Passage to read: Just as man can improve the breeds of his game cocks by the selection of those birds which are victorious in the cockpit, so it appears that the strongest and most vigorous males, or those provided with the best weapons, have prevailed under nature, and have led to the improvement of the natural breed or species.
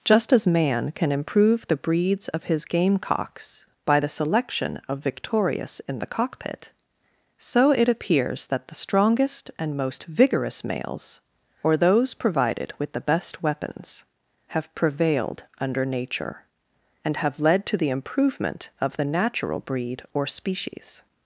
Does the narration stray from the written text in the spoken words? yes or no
yes